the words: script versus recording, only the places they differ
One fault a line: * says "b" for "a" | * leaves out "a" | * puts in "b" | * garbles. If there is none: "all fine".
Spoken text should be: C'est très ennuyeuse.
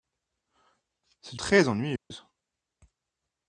all fine